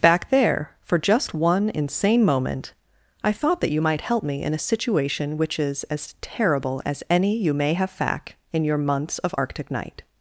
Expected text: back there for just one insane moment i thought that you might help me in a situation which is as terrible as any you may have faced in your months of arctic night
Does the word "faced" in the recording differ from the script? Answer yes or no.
yes